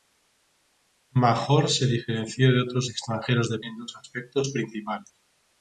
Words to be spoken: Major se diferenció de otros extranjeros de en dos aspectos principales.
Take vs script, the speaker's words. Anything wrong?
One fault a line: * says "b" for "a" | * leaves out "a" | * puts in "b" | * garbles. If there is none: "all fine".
all fine